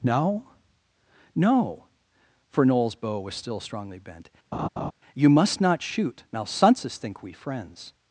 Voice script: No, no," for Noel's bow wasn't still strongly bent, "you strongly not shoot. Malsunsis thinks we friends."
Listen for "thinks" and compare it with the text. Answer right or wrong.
wrong